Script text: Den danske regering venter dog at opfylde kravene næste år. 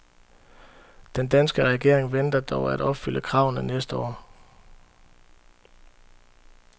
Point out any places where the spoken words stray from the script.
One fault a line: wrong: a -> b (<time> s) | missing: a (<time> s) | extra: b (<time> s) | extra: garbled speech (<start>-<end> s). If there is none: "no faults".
no faults